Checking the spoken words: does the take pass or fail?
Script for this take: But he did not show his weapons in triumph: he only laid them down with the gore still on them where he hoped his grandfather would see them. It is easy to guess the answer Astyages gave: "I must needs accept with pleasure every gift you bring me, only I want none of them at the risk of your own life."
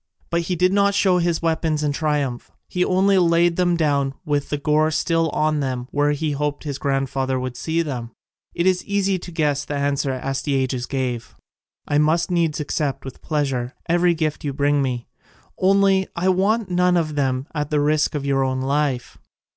pass